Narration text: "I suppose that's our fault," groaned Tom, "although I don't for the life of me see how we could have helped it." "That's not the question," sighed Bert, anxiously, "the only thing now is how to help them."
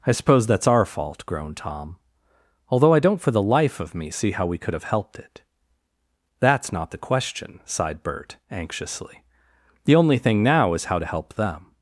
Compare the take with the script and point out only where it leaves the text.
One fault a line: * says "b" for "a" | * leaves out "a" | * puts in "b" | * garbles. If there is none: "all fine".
all fine